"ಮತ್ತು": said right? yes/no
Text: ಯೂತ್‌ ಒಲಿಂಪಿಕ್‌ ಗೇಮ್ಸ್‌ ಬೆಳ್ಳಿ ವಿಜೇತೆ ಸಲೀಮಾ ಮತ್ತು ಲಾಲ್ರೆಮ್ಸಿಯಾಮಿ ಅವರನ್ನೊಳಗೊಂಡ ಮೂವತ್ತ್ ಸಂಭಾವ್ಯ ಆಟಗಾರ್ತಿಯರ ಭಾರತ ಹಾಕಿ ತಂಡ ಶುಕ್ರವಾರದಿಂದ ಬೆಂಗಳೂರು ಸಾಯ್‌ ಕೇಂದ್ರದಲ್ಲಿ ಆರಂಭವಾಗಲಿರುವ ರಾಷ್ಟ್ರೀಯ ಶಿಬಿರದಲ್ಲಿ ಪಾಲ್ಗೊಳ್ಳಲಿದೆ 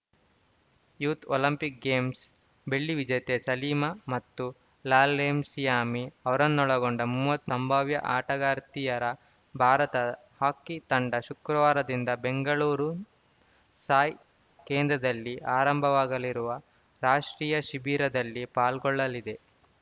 yes